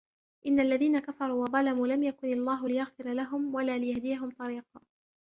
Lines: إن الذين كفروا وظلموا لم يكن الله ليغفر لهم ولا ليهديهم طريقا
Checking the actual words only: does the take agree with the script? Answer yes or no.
yes